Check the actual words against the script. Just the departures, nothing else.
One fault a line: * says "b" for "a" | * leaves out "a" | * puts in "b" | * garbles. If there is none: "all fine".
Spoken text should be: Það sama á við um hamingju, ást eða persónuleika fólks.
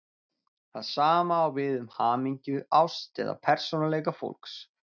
all fine